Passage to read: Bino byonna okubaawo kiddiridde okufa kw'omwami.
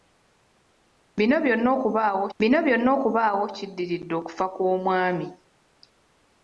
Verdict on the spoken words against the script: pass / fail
fail